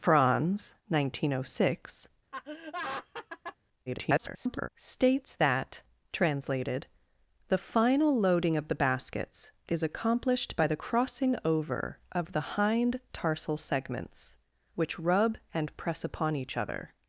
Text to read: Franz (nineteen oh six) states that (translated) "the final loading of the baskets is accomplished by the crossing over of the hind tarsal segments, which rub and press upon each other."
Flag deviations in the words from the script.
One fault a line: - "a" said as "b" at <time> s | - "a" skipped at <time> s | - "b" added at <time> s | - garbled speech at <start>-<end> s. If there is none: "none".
- garbled speech at 3.9-4.7 s